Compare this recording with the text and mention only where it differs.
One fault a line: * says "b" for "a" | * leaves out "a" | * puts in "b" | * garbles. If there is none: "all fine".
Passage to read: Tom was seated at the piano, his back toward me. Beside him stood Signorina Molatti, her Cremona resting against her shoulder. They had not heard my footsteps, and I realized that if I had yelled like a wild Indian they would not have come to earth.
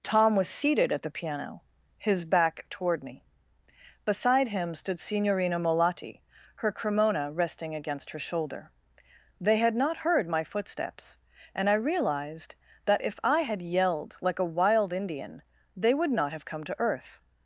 all fine